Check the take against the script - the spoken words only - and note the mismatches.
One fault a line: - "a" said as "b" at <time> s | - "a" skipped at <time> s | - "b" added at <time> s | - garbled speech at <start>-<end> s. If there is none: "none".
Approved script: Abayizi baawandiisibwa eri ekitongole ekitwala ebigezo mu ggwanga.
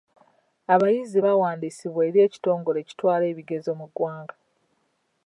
none